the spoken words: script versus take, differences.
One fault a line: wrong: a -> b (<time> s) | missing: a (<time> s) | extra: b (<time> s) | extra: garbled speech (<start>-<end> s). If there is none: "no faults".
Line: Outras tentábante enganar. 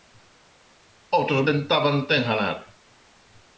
no faults